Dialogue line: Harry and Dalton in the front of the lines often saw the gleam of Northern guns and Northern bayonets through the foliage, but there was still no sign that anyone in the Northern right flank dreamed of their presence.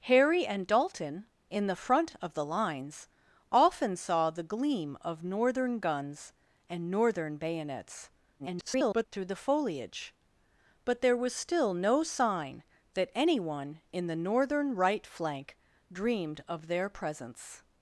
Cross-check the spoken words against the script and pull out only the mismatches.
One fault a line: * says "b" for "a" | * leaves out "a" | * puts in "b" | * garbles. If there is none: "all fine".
* garbles